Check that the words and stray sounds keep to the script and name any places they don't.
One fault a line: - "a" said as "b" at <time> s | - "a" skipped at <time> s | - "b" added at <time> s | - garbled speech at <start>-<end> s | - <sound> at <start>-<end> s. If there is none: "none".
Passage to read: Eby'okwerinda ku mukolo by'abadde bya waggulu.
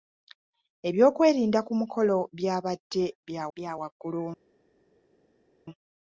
- "bya" added at 3.6 s